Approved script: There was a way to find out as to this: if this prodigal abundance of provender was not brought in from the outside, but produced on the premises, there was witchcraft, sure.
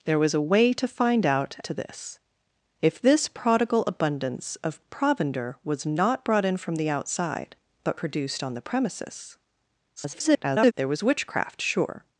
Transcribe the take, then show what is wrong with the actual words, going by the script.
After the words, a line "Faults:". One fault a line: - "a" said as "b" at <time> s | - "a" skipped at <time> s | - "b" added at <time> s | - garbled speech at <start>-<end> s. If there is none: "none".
There was a way to find out to this: if this prodigal abundance of provender was not brought in from the outside, but produced on the premises, [garbled] there was witchcraft, sure.
Faults:
- "as" skipped at 1.6 s
- garbled speech at 10.0-10.7 s